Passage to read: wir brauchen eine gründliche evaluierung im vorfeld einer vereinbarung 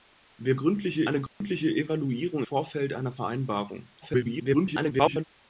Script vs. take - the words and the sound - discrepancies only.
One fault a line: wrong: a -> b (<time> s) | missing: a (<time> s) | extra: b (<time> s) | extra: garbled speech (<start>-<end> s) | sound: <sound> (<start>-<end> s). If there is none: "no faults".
wrong: brauchen -> gründliche (0.6 s)
sound: dropout (1.3-1.4 s)
missing: im (2.4 s)
extra: garbled speech (4.0-5.2 s)